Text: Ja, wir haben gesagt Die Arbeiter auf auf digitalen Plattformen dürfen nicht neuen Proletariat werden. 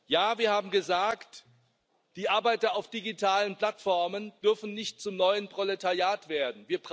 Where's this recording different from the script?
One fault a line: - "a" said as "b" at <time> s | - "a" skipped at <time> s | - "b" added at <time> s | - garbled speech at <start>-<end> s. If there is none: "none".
- "auf" skipped at 2.9 s
- "zum" added at 5.0 s